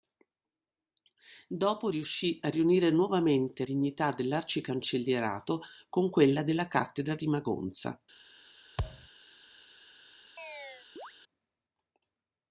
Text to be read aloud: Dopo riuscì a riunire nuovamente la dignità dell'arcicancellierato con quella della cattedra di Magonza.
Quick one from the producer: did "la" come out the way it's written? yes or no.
no